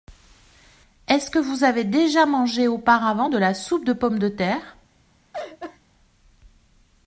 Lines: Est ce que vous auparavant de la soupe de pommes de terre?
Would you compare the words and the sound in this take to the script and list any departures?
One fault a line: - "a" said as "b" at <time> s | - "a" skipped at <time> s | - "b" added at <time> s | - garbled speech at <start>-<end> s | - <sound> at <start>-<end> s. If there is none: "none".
- "avez déjà mangé" added at 1.6 s
- laugh at 5.3-5.8 s